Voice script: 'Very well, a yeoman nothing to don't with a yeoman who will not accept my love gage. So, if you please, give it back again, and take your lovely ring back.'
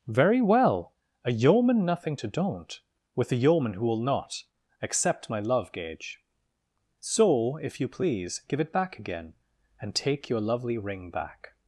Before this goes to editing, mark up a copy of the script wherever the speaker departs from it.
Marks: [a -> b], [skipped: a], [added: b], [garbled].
'Very well, a yeoman nothing to don't with a yeoman who will not accept my love gage. So, if you please, give it back again, and take your lovely ring back.'